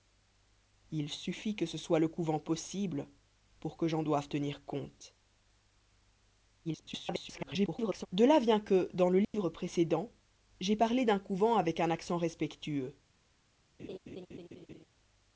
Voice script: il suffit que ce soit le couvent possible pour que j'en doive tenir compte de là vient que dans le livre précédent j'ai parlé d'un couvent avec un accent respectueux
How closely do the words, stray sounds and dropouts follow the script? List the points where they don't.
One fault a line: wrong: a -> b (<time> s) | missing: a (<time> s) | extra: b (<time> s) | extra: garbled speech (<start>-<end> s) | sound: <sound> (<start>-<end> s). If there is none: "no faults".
extra: garbled speech (6.6-8.1 s)
sound: dropout (9.2-9.3 s)
sound: laugh (13.8-14.9 s)